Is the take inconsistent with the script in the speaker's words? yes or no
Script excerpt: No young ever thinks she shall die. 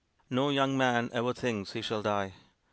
yes